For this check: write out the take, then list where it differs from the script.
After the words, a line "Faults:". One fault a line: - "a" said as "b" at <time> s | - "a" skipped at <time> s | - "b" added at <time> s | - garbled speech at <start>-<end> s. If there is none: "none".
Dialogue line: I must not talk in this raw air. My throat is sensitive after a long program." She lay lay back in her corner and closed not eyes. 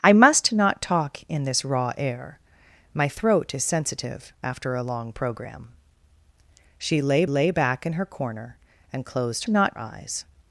I must not talk in this raw air. My throat is sensitive after a long program." She lay lay back in her corner and closed not eyes.
Faults:
none